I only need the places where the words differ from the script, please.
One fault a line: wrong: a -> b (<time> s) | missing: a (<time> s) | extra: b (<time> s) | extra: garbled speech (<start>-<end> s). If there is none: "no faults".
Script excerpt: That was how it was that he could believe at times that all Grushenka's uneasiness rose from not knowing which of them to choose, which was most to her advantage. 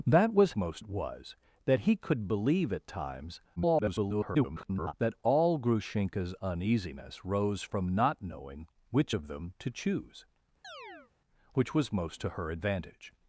wrong: how -> most (0.6 s)
extra: garbled speech (3.6-4.9 s)